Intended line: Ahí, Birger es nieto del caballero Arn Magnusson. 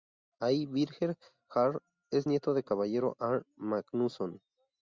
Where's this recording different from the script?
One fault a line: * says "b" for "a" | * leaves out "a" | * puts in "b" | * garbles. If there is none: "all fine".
* puts in "jarl"